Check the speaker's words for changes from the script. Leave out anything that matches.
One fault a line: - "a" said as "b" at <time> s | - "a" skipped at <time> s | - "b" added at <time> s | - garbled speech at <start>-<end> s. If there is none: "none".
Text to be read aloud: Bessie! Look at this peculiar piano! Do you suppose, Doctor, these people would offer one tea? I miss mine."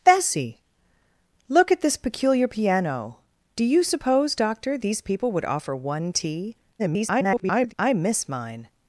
- garbled speech at 6.8-7.7 s